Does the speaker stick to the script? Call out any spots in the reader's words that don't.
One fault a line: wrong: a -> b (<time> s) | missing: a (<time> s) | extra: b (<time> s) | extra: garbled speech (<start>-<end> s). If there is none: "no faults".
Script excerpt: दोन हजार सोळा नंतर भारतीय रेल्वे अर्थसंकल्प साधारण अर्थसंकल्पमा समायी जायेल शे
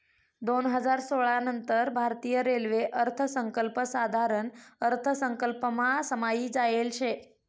no faults